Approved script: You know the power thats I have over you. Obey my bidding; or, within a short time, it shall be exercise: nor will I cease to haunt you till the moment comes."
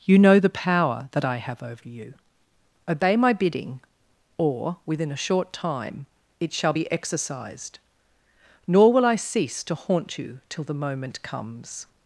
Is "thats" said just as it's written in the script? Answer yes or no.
no